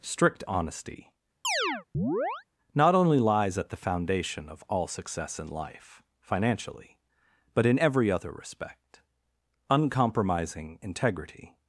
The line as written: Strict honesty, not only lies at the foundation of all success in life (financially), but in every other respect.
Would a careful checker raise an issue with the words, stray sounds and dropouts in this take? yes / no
yes